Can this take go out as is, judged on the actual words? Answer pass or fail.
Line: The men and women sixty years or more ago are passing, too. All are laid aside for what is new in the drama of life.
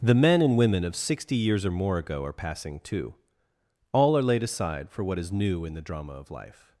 fail